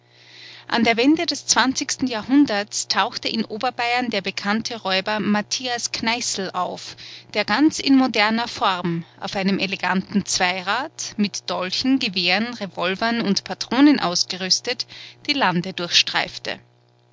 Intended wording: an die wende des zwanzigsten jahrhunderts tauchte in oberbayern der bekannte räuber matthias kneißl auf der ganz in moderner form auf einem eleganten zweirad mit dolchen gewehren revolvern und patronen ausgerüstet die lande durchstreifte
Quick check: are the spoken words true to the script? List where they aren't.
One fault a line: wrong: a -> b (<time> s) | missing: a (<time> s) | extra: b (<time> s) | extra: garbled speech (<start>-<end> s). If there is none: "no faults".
wrong: die -> der (0.8 s)